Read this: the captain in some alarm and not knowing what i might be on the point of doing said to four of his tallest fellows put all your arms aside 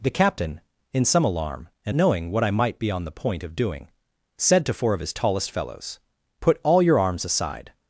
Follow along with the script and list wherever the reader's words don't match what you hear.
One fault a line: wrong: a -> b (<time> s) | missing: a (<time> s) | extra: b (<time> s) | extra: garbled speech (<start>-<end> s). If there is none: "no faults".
missing: not (1.9 s)